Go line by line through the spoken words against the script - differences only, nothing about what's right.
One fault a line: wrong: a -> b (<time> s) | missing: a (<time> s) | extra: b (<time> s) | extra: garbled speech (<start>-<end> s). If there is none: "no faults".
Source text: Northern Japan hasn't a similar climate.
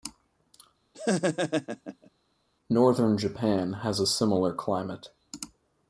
wrong: hasn't -> has (3.8 s)